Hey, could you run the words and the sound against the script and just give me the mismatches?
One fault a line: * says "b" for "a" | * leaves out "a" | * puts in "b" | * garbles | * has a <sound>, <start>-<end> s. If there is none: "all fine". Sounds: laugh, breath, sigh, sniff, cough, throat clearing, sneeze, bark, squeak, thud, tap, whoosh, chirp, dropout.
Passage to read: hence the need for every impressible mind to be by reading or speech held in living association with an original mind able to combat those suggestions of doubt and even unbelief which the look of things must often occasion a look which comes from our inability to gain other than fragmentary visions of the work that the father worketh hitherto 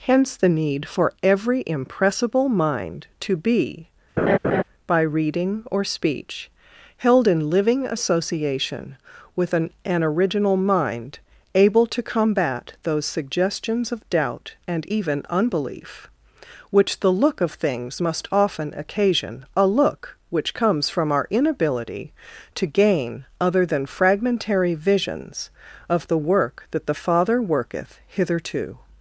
* has a laugh, 4.2-4.6 s
* puts in "an"